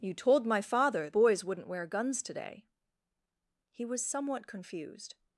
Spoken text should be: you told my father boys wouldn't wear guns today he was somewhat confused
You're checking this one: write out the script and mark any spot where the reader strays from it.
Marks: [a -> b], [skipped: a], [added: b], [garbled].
you told my father boys wouldn't wear guns today he was somewhat confused